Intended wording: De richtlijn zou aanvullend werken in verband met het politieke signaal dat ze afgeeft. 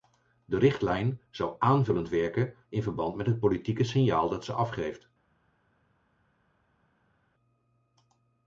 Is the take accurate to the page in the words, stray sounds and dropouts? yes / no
yes